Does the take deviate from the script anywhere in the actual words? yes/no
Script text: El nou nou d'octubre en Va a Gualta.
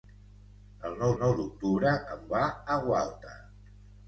no